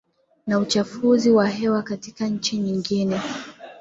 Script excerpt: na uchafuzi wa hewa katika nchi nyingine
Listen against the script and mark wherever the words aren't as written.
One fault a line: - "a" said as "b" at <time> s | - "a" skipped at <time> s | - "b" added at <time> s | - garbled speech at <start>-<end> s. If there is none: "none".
none